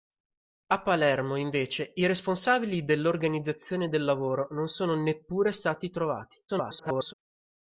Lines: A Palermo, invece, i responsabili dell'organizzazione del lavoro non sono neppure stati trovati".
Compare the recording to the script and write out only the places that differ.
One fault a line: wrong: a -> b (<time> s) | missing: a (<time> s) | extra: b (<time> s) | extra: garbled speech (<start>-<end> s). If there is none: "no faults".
extra: garbled speech (6.5-7.1 s)